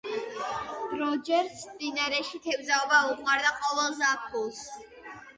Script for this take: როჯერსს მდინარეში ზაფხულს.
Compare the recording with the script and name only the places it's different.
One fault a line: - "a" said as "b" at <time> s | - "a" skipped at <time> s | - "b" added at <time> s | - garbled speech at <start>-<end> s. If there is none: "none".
- "თევზაობა უყვარდა ყოველ" added at 2.5 s